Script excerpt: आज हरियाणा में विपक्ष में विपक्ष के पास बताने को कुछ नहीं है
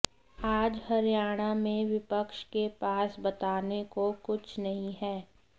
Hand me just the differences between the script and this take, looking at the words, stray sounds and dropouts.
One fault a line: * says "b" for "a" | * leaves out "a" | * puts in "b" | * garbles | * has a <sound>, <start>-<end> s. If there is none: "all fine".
* leaves out "में विपक्ष"